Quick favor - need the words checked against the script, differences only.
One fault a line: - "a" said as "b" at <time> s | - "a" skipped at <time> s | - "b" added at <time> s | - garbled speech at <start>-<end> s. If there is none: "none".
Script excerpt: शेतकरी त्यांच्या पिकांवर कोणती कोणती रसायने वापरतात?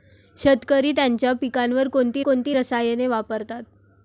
none